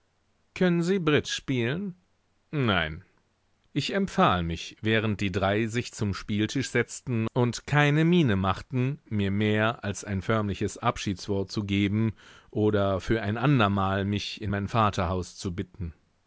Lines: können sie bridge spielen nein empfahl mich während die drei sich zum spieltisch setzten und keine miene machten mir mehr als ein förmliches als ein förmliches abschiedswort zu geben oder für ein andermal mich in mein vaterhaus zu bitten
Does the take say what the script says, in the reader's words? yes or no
no